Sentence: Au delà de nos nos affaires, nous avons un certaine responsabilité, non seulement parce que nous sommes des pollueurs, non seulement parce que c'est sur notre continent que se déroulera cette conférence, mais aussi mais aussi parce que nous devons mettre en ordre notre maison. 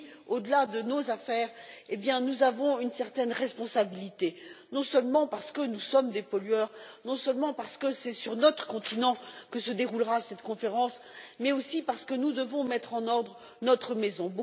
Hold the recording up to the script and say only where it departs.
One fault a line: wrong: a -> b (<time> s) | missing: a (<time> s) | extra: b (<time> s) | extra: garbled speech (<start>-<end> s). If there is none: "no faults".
missing: nos (1.1 s)
wrong: un -> une (2.8 s)
missing: mais aussi (11.8 s)